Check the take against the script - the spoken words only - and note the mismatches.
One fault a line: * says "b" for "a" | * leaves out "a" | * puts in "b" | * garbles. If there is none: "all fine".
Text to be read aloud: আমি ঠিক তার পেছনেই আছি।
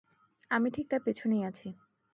all fine